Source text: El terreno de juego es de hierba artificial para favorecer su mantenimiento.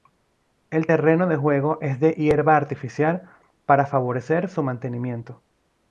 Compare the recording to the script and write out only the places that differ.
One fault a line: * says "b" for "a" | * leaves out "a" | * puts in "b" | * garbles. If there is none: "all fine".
all fine